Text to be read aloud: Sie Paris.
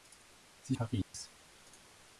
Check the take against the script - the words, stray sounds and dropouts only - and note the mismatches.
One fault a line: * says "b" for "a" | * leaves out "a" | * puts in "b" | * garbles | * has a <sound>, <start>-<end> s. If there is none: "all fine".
* has a dropout, 1.0-1.1 s